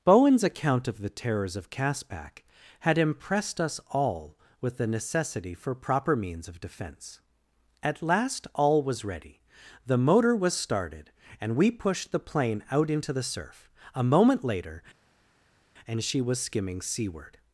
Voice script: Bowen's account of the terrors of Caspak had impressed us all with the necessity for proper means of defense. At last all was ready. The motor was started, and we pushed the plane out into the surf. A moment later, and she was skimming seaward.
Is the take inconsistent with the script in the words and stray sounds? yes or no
no